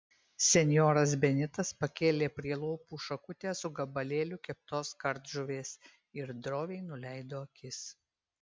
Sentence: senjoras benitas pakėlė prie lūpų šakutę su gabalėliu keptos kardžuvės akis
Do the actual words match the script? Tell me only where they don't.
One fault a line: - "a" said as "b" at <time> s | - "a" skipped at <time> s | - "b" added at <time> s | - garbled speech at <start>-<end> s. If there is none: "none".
- "ir droviai nuleido" added at 6.2 s